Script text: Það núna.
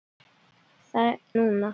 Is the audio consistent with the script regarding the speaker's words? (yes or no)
yes